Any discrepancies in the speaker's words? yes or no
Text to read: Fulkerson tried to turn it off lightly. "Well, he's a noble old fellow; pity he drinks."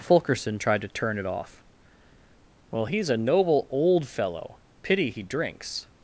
yes